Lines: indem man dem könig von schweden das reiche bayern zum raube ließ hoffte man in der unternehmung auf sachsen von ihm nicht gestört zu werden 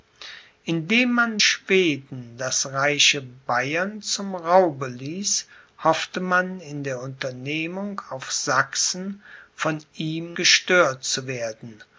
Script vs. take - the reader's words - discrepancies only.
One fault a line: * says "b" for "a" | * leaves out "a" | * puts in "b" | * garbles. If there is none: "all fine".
* leaves out "dem könig von"
* leaves out "nicht"